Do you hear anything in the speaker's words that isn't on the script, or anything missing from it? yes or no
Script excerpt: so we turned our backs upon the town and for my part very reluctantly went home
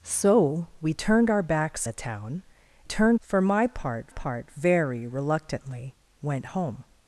yes